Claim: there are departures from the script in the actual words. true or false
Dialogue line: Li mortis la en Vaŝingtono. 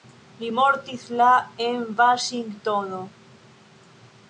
false